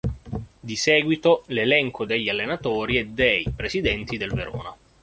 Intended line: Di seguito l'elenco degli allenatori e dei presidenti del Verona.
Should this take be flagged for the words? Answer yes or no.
no